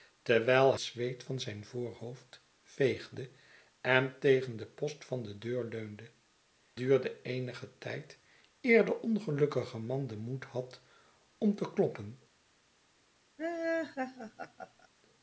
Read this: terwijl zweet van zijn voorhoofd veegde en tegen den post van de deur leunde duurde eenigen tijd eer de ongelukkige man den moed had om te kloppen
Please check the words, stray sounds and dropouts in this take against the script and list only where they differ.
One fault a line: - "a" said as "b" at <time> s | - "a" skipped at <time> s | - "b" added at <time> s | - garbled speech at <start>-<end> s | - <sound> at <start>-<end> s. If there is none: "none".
- laugh at 13.4-14.9 s